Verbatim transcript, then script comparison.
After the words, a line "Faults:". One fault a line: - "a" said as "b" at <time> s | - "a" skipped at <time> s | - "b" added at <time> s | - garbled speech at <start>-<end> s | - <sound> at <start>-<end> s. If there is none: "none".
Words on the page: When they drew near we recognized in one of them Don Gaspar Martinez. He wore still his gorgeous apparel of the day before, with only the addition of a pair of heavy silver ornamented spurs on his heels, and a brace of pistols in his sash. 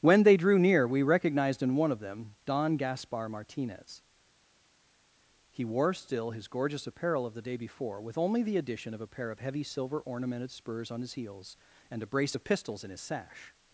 When they drew near we recognized in one of them Don Gaspar Martinez. He wore still his gorgeous apparel of the day before, with only the addition of a pair of heavy silver ornamented spurs on his heels, and a brace of pistols in his sash.
Faults:
none